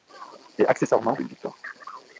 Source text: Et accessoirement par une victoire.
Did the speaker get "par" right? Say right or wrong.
wrong